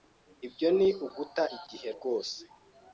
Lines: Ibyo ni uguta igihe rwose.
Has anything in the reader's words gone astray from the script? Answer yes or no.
no